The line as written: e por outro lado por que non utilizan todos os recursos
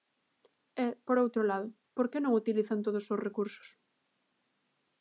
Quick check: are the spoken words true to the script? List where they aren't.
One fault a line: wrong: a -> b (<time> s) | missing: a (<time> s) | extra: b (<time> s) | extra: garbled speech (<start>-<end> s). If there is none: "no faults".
no faults